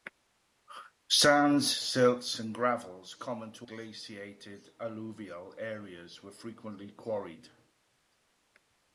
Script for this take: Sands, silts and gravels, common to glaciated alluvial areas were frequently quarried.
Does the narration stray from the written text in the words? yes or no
no